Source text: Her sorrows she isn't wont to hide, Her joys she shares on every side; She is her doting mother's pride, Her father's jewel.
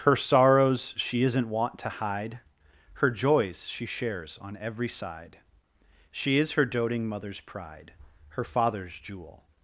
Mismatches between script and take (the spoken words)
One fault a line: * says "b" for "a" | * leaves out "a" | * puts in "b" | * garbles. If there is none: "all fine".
all fine